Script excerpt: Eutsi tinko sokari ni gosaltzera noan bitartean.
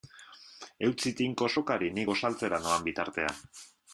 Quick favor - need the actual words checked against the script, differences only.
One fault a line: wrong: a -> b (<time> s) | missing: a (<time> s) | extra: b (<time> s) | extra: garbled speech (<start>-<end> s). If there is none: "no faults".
no faults